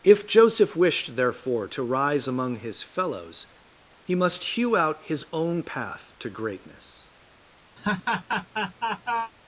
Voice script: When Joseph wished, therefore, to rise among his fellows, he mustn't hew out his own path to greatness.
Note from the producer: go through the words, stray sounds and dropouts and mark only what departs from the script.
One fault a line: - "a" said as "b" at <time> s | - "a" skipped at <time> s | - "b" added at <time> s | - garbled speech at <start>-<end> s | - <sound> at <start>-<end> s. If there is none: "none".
- "When" said as "If" at 0.0 s
- "mustn't" said as "must" at 4.1 s
- laugh at 7.8-9.3 s